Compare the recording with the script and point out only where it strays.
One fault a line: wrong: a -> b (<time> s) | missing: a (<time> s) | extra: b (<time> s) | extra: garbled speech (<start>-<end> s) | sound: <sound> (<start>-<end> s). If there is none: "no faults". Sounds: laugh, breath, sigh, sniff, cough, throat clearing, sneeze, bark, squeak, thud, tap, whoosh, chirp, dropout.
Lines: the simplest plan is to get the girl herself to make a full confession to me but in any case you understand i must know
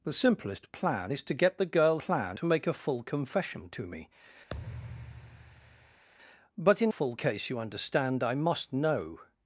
wrong: herself -> plan (2.0 s)
sound: thud (4.5-6.0 s)
wrong: any -> full (6.9 s)